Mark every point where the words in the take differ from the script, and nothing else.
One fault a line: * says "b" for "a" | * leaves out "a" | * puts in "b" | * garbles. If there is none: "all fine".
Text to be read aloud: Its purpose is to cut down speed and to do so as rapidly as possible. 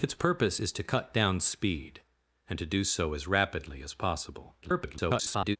* garbles